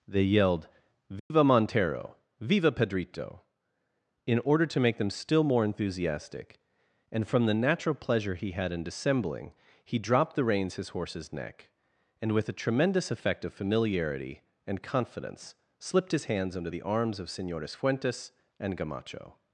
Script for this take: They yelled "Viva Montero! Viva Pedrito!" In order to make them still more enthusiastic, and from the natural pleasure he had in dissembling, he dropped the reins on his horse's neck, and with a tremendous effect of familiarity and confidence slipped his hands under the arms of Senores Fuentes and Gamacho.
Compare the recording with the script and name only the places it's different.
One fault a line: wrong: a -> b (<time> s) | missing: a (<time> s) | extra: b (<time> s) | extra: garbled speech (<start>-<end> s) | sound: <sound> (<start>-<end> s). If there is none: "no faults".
sound: dropout (1.2-1.3 s)
missing: on (10.8 s)